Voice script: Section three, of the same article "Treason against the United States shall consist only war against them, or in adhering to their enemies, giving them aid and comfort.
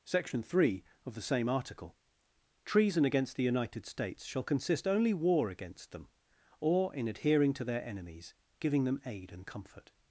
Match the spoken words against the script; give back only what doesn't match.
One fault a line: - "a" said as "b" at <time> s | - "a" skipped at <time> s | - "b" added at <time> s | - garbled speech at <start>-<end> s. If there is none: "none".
none